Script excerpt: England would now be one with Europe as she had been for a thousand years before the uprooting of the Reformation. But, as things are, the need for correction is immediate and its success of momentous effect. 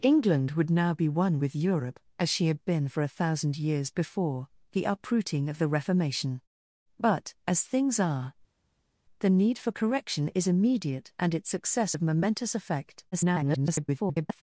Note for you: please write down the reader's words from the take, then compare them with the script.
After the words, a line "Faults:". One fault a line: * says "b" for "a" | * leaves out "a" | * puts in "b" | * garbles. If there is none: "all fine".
England would now be one with Europe as she had been for a thousand years before the uprooting of the Reformation. But, as things are, the need for correction is immediate and its success of momentous effect. [garbled]
Faults:
* garbles